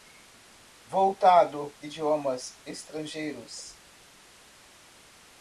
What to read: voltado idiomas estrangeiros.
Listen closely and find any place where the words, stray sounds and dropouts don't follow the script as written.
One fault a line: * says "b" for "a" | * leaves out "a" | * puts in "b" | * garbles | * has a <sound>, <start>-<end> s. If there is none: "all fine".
all fine